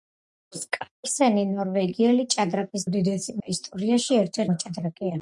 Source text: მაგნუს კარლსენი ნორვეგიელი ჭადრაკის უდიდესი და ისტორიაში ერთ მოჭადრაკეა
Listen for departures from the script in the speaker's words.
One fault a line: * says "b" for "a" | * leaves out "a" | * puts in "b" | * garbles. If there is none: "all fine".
all fine